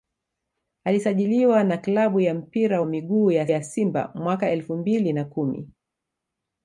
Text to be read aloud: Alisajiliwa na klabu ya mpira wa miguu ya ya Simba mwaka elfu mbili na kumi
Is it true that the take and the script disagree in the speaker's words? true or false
false